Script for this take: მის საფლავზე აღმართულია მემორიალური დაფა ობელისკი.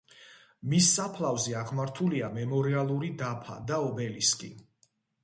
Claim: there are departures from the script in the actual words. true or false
true